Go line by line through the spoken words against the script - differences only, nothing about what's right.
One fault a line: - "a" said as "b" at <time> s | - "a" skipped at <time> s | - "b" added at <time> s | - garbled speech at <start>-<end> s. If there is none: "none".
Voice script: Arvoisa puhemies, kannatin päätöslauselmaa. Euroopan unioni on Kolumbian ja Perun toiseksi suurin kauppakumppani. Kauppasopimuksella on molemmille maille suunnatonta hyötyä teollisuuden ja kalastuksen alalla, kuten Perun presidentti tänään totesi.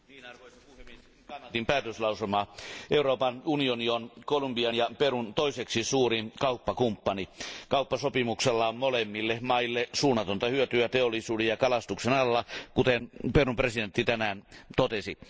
none